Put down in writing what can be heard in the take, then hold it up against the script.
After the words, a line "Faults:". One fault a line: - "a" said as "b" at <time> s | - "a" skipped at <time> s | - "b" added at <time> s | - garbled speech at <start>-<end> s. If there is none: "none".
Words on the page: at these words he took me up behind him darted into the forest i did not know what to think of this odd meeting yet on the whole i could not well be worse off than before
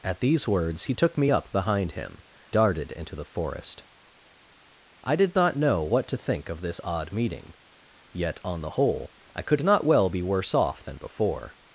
at these words he took me up behind him darted into the forest i did not know what to think of this odd meeting yet on the whole i could not well be worse off than before
Faults:
none